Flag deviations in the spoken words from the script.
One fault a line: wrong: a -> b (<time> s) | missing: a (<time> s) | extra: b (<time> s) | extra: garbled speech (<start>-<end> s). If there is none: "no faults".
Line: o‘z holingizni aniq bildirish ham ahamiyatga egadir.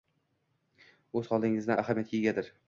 missing: aniq bildirish ham (1.7 s)